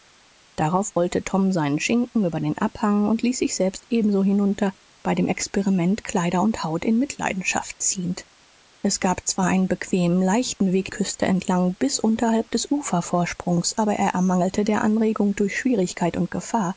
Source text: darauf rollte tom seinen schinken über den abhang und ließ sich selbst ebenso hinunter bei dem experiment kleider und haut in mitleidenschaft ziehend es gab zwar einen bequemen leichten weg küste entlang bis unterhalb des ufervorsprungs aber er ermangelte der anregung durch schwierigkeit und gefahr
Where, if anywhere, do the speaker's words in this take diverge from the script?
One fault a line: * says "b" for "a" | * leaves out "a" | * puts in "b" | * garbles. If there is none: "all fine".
all fine